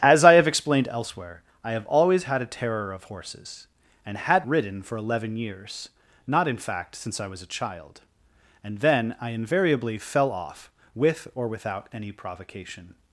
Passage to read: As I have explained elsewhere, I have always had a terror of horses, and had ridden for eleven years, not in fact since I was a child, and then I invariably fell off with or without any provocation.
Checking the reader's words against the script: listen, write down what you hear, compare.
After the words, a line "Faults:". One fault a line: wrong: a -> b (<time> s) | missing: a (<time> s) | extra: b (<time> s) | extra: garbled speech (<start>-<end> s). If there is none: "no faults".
As I have explained elsewhere, I have always had a terror of horses, and had ridden for eleven years, not in fact since I was a child, and then I invariably fell off with or without any provocation.
Faults:
no faults